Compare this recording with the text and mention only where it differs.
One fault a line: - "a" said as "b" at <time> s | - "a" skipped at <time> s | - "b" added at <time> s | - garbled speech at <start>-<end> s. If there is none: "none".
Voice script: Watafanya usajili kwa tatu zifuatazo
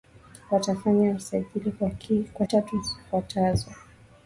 none